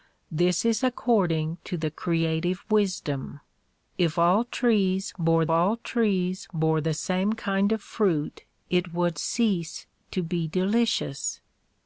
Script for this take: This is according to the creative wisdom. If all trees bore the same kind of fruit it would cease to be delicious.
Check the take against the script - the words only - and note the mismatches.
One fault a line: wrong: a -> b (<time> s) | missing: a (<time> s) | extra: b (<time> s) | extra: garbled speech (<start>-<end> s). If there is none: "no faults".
extra: all trees bore (5.5 s)